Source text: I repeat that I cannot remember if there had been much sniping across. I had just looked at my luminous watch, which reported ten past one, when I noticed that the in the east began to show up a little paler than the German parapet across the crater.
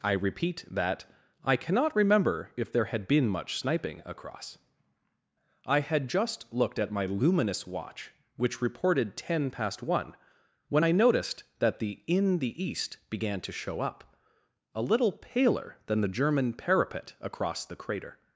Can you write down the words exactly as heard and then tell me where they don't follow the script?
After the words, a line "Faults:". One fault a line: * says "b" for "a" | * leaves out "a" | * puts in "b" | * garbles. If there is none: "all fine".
I repeat that I cannot remember if there had been much sniping across. I had just looked at my luminous watch, which reported ten past one, when I noticed that the in the east began to show up a little paler than the German parapet across the crater.
Faults:
all fine